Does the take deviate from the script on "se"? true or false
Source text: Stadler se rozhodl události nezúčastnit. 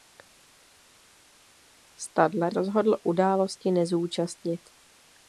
true